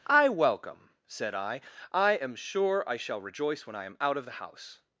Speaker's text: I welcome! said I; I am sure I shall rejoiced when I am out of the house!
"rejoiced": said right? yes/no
no